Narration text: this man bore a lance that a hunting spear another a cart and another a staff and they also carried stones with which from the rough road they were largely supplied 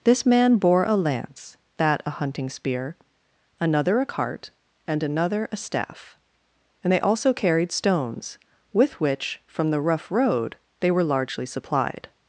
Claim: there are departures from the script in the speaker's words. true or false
false